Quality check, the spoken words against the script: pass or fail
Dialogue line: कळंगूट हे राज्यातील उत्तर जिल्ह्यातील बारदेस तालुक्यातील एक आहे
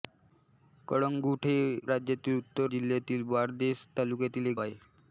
pass